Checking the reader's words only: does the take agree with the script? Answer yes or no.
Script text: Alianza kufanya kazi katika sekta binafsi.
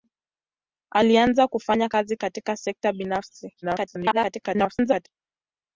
no